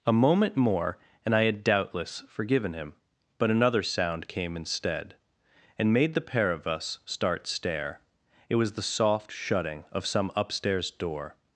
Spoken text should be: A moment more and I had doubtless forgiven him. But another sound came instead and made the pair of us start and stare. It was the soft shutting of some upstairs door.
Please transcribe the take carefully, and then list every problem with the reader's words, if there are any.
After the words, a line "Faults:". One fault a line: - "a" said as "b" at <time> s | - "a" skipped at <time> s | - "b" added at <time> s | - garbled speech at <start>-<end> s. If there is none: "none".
A moment more and I had doubtless forgiven him. But another sound came instead and made the pair of us start stare. It was the soft shutting of some upstairs door.
Faults:
- "and" skipped at 7.5 s